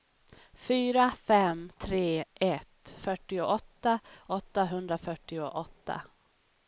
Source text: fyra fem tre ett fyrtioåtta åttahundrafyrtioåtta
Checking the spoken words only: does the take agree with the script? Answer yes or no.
yes